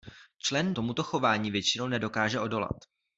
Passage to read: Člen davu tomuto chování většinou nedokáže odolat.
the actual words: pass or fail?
fail